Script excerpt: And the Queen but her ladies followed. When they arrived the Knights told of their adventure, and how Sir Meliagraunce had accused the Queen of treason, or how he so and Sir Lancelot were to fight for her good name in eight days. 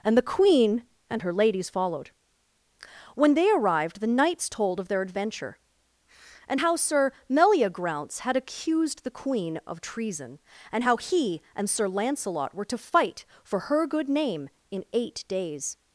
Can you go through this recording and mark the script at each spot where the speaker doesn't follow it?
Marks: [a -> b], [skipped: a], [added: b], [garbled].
And the Queen [but -> and] her ladies followed. When they arrived the Knights told of their adventure, and how Sir Meliagraunce had accused the Queen of treason, [or -> and] how he [skipped: so] and Sir Lancelot were to fight for her good name in eight days.